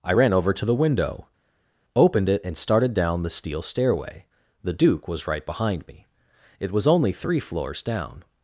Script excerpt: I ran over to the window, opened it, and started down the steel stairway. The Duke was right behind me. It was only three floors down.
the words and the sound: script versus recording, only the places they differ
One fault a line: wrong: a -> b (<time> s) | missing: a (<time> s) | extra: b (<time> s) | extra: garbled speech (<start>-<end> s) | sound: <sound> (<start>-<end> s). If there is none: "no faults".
no faults